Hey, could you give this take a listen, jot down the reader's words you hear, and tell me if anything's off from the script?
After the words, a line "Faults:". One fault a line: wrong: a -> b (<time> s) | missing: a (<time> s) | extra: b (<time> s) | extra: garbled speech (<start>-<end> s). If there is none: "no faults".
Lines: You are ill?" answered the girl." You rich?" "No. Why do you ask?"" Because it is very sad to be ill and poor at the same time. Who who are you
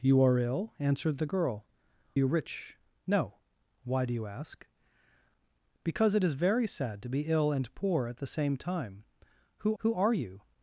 You are ill?" answered the girl." You rich?" "No. Why do you ask?"" Because it is very sad to be ill and poor at the same time. Who who are you
Faults:
no faults